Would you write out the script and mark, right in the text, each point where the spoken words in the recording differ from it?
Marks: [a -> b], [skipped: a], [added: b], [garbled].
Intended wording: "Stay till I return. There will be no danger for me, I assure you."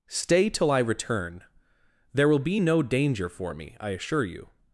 "Stay till I return. There will be no danger for me, I assure you."